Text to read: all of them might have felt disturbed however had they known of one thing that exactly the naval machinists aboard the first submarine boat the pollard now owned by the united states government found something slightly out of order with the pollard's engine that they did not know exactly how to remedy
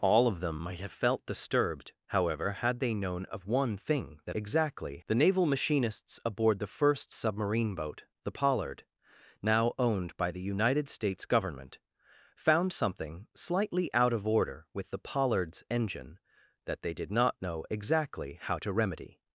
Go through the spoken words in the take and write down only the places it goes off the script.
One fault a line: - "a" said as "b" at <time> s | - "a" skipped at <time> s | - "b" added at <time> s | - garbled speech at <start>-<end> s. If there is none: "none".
none